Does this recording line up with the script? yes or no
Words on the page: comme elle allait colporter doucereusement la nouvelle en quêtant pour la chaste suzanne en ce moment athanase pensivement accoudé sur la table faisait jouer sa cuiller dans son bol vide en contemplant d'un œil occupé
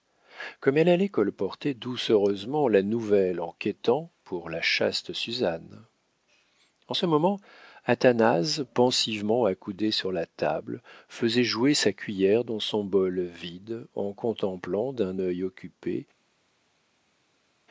yes